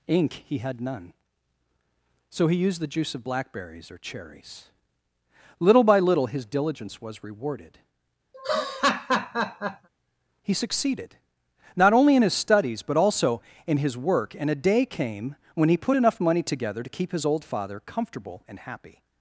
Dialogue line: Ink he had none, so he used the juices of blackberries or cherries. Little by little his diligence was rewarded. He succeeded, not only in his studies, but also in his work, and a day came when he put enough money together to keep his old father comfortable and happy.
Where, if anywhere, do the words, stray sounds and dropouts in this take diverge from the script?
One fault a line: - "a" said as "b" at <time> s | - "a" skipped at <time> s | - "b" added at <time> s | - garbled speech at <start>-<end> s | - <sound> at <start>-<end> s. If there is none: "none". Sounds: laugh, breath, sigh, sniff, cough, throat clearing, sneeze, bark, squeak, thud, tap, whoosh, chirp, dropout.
- "juices" said as "juice" at 2.9 s
- laugh at 8.3-9.9 s